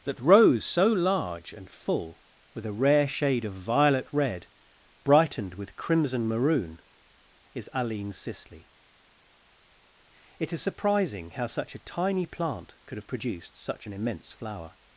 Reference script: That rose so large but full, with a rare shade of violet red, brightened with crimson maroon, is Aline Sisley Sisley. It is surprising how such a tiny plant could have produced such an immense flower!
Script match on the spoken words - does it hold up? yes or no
no